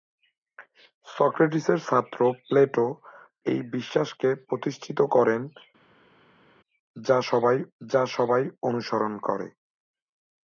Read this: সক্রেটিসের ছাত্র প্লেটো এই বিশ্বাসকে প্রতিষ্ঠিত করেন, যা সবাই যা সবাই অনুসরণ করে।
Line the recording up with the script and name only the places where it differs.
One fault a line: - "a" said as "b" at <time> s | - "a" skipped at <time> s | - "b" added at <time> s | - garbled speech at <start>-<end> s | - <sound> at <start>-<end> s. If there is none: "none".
none